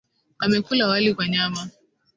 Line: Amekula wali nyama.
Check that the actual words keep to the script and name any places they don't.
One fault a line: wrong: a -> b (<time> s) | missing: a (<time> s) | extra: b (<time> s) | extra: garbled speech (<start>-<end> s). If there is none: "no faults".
extra: kwa (1.1 s)